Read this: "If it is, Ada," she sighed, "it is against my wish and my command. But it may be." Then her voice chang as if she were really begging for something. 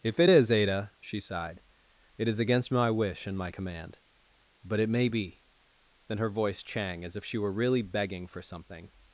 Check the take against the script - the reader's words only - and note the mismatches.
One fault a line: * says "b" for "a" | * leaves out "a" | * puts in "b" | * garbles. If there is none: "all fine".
all fine